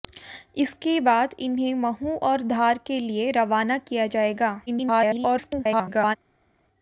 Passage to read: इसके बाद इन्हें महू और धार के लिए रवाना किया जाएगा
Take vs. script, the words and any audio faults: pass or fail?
fail